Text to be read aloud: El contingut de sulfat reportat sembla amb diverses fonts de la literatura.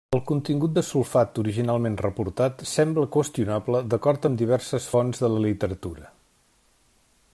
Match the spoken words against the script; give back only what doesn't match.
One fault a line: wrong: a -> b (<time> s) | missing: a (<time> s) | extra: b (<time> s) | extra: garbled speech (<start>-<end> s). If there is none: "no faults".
extra: originalment (1.4 s)
extra: qüestionable d'acord (3.2 s)